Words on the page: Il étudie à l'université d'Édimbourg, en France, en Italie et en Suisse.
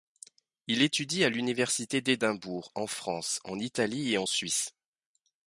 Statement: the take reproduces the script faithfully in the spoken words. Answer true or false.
true